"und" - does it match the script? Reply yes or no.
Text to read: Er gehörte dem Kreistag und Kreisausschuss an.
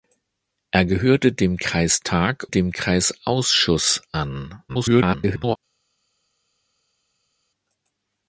no